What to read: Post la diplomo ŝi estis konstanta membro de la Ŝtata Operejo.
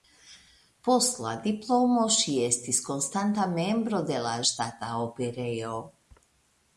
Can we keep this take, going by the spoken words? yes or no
yes